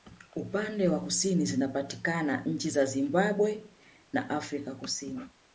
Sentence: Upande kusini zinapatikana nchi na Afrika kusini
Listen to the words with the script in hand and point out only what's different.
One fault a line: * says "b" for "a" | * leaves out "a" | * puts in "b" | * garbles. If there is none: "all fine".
* puts in "wa"
* puts in "za Zimbabwe"